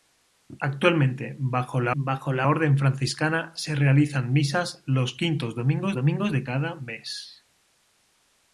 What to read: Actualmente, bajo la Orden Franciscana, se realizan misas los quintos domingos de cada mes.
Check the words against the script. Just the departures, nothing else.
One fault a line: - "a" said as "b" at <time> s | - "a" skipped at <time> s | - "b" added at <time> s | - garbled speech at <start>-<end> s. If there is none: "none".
- "bajo la" added at 1.9 s
- "domingos" added at 5.9 s